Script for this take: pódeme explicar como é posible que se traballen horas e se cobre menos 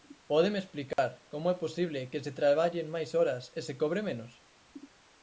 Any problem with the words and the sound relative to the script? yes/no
yes